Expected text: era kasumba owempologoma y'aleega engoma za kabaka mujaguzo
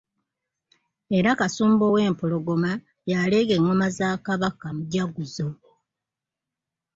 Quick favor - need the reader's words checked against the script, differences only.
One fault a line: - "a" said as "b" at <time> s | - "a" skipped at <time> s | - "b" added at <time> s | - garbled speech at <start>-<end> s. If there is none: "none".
none